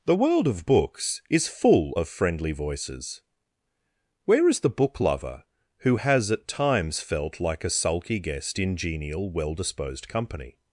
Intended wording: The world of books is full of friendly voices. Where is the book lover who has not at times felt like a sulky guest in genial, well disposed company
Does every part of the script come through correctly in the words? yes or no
no